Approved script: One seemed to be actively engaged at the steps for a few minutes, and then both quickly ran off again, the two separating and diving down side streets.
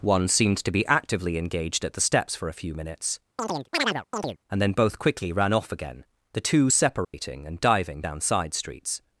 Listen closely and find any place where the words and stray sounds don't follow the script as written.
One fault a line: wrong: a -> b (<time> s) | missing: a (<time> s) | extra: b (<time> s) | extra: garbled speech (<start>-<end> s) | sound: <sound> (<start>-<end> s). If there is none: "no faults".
sound: chirp (3.4-4.4 s)
sound: dropout (7.0-7.1 s)